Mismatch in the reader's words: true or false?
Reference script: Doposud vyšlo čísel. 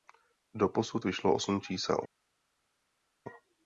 true